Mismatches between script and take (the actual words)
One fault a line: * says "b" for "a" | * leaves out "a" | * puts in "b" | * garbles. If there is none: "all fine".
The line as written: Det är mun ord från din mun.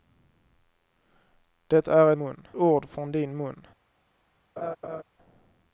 all fine